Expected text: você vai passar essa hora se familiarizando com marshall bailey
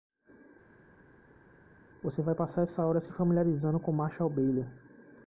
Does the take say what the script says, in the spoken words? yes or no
yes